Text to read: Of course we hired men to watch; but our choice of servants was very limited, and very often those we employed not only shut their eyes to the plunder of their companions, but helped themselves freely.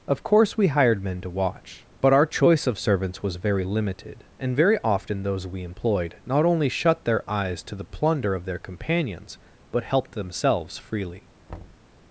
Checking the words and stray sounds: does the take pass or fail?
fail